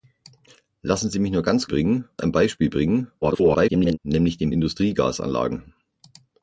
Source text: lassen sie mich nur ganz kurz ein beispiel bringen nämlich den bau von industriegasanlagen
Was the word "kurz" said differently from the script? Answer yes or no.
yes